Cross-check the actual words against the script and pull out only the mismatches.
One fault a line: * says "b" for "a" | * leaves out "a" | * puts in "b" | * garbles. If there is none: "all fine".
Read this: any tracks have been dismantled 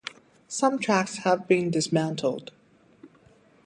* says "some" for "any"